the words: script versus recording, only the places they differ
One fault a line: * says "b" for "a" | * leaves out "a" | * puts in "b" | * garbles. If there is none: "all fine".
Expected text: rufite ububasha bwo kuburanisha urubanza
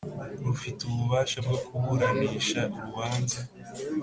all fine